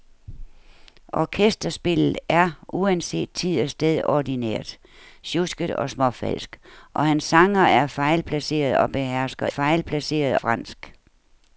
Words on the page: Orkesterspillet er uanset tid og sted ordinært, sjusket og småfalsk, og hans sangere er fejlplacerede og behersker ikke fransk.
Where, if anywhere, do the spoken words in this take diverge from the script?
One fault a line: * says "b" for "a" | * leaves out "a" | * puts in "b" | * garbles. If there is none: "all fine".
* says "fejlplacerede" for "ikke"